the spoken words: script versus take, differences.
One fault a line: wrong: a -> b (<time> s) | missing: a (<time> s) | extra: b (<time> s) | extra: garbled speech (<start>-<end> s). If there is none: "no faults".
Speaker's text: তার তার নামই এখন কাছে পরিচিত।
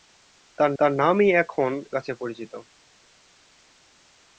no faults